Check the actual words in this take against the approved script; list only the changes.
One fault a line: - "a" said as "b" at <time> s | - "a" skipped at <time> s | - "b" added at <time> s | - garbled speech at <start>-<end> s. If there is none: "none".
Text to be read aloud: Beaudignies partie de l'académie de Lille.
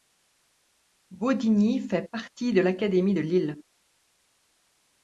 - "fait" added at 1.8 s